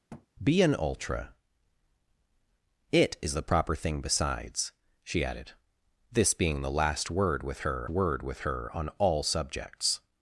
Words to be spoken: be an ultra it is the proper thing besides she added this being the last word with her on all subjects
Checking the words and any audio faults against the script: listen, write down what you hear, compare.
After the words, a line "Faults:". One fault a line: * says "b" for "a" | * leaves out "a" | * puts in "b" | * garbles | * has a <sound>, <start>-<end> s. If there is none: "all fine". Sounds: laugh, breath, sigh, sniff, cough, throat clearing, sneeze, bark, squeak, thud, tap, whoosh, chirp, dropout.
be an ultra it is the proper thing besides she added this being the last word with her word with her on all subjects
Faults:
* has a thud, 0.1-0.3 s
* puts in "word with her"